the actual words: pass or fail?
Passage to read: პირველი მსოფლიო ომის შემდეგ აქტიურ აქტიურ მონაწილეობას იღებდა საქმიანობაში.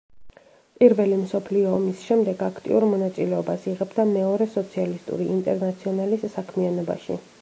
fail